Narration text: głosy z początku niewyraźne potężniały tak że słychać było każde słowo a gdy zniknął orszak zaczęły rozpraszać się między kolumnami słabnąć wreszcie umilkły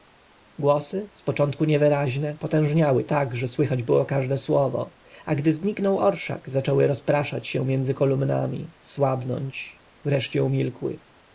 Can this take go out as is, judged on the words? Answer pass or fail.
pass